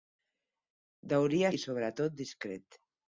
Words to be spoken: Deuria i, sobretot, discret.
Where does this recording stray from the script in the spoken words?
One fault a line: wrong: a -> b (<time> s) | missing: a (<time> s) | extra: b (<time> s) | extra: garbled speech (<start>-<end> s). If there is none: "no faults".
no faults